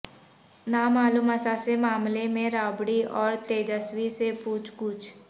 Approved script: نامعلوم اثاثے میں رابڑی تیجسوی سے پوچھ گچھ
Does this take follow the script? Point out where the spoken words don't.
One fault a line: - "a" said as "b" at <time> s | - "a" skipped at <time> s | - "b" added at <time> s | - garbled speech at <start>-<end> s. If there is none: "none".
- "معاملے" added at 1.8 s
- "اور" added at 3.2 s